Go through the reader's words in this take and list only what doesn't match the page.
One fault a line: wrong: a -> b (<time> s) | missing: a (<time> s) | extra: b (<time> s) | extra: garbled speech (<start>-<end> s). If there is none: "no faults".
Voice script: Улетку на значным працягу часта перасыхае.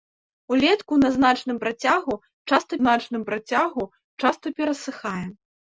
extra: значным працягу часта (2.8 s)